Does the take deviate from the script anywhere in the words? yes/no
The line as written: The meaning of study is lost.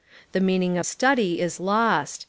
no